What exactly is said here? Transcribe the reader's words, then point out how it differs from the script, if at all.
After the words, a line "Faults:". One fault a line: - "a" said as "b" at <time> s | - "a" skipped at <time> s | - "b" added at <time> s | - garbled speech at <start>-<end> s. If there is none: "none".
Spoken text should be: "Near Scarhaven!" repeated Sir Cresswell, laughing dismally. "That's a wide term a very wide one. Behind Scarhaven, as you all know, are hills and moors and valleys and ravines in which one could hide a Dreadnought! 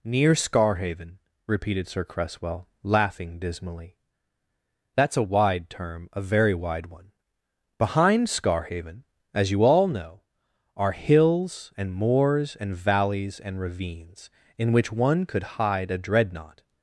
"Near Scarhaven!" repeated Sir Cresswell, laughing dismally. "That's a wide term a very wide one. Behind Scarhaven, as you all know, are hills and moors and valleys and ravines in which one could hide a Dreadnought!
Faults:
none